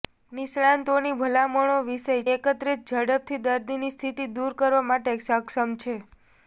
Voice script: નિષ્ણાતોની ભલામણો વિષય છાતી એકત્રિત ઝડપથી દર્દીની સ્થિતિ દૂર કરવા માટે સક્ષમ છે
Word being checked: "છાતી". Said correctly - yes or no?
no